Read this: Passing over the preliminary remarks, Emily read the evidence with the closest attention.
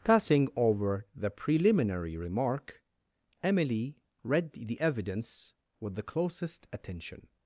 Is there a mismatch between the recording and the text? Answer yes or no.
yes